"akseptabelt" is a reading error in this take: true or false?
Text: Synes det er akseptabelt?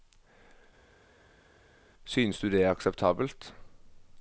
false